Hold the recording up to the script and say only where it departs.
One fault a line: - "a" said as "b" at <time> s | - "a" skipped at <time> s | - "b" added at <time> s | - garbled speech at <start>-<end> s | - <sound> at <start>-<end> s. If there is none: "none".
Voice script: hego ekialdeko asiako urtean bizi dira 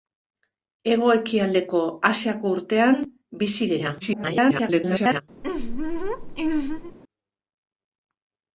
- garbled speech at 4.0-5.2 s
- laugh at 5.4-7.0 s